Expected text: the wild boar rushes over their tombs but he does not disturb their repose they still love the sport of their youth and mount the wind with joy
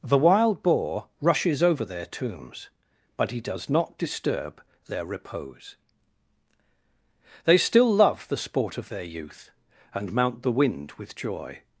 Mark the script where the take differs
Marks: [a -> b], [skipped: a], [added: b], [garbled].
the wild boar rushes over their tombs but he does not disturb their repose they still love the sport of their youth and mount the wind with joy